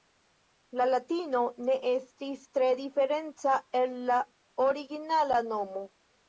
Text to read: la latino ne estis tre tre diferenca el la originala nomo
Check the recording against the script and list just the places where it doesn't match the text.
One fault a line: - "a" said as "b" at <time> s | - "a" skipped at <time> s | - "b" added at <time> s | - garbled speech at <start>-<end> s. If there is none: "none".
- "tre" skipped at 2.7 s